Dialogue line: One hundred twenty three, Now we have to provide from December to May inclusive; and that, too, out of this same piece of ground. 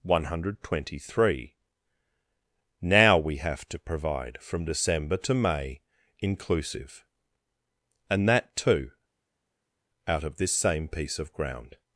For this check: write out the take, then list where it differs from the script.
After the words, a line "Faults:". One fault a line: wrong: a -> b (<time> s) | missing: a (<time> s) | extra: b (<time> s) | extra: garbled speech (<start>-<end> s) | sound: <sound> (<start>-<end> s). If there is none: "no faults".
One hundred twenty three, Now we have to provide from December to May inclusive; and that, too, out of this same piece of ground.
Faults:
no faults